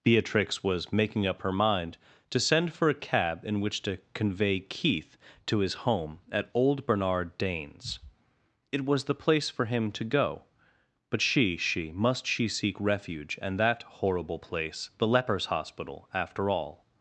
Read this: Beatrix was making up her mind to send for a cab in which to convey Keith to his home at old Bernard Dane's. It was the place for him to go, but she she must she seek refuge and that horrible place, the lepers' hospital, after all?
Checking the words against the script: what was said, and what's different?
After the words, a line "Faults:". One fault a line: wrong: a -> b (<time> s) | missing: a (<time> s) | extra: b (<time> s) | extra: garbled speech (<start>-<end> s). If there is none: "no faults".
Beatrix was making up her mind to send for a cab in which to convey Keith to his home at old Bernard Dane's. It was the place for him to go, but she she must she seek refuge and that horrible place, the lepers' hospital, after all?
Faults:
no faults